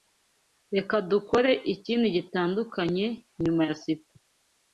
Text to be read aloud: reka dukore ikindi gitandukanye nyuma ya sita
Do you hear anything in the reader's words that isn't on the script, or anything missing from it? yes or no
no